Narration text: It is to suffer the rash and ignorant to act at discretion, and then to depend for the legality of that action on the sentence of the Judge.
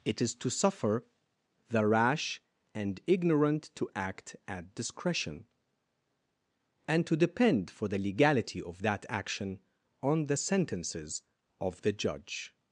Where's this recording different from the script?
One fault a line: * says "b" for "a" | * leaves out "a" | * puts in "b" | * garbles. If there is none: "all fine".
* leaves out "then"
* says "sentences" for "sentence"